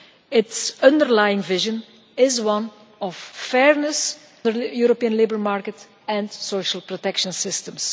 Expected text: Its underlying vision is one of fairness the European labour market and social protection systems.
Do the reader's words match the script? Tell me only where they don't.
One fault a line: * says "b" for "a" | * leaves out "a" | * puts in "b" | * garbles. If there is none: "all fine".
all fine